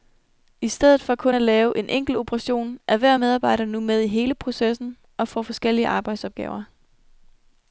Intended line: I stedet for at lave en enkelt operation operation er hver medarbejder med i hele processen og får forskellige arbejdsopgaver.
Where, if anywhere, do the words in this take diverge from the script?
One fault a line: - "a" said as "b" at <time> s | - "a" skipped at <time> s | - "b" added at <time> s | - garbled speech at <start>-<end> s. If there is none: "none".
- "kun" added at 1.1 s
- "operation" skipped at 2.8 s
- "nu" added at 3.6 s